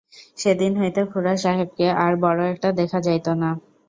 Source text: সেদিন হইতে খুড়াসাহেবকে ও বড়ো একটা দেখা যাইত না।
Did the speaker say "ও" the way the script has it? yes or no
no